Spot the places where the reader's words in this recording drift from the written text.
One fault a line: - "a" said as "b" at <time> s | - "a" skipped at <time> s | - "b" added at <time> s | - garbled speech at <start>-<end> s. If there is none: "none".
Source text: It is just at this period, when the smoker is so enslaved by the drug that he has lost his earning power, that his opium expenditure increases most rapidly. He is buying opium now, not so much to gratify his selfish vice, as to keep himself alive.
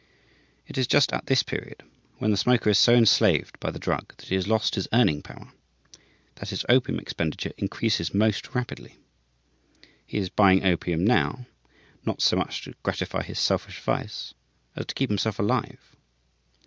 none